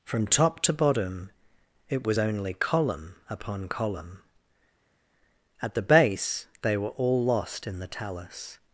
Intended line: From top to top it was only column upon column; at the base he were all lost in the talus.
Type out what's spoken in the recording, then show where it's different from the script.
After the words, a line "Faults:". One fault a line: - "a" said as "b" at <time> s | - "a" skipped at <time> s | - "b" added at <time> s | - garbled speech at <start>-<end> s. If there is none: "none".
From top to bottom it was only column upon column; at the base they were all lost in the talus.
Faults:
- "top" said as "bottom" at 0.7 s
- "he" said as "they" at 6.6 s